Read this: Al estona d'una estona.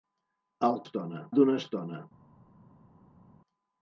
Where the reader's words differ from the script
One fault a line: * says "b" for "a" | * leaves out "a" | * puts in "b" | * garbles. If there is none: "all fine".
all fine